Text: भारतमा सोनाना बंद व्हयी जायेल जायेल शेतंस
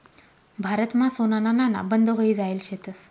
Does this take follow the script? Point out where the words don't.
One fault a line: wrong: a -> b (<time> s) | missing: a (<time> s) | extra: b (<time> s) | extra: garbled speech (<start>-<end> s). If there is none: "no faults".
extra: नाणा (1.5 s)
missing: जायेल (2.6 s)